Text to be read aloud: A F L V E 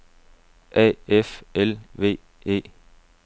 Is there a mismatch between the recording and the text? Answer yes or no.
no